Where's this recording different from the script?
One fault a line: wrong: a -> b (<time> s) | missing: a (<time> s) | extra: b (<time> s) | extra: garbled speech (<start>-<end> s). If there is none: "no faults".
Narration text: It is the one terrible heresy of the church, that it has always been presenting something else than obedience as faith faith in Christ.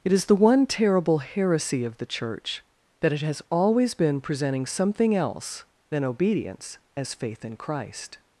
missing: faith (7.5 s)